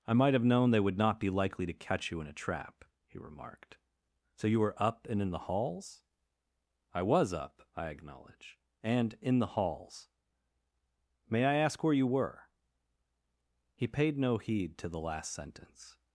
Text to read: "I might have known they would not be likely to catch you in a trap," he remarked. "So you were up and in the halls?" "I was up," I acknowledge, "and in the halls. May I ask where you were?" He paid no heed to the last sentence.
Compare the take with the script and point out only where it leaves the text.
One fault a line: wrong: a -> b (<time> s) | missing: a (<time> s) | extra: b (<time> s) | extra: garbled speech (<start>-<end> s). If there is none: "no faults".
no faults